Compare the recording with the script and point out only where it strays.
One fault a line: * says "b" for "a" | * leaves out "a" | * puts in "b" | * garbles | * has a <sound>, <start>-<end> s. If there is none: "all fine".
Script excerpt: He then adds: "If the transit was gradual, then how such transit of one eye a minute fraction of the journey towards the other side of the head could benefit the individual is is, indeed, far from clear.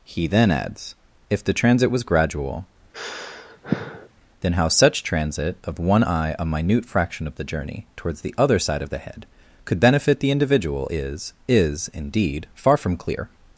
* has a sigh, 2.9-4.1 s